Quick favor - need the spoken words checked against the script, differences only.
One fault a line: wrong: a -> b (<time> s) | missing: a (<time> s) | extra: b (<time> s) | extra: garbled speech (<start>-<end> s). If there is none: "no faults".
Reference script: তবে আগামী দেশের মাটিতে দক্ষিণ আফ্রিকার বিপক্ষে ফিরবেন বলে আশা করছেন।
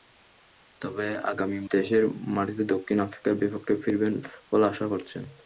no faults